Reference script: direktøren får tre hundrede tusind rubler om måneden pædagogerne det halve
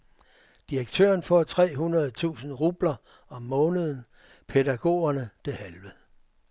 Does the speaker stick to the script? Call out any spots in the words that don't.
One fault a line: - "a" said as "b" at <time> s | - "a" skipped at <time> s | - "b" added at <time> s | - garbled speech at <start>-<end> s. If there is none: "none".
none